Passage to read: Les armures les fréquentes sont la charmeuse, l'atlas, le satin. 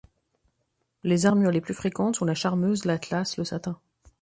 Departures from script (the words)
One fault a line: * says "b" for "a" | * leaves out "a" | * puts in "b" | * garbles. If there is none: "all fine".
* puts in "plus"